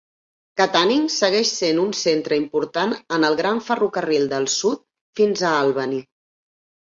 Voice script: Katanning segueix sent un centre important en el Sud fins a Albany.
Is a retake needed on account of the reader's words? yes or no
yes